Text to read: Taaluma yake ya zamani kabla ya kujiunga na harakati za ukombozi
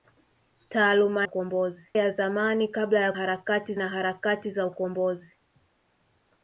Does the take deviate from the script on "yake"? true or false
true